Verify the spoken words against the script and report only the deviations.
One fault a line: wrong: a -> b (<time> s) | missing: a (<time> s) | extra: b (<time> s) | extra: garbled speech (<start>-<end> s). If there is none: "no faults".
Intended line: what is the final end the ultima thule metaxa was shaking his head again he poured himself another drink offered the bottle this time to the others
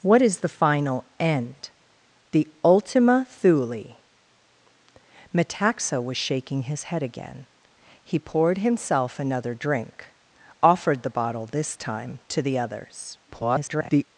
extra: garbled speech (13.3-14.1 s)